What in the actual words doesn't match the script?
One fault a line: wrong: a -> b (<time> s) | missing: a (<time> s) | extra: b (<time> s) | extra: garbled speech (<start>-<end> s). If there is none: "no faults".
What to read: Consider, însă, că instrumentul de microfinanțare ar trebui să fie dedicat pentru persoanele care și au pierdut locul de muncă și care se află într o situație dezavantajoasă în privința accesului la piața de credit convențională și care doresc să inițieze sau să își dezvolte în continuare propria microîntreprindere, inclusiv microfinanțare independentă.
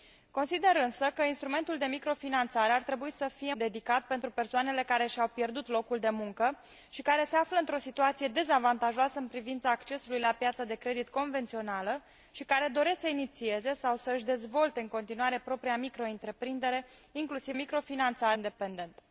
no faults